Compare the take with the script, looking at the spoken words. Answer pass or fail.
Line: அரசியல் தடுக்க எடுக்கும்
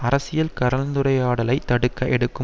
fail